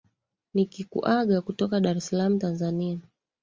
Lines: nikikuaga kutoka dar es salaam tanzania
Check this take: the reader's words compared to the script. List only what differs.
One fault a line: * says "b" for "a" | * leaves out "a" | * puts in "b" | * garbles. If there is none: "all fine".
all fine